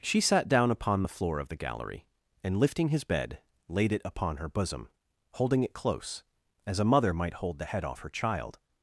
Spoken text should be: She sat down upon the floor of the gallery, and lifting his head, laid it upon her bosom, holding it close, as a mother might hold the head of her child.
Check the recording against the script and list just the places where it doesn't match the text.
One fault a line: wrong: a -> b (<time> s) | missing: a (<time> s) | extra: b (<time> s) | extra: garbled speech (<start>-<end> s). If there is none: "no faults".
wrong: head -> bed (3.0 s)
wrong: of -> off (7.8 s)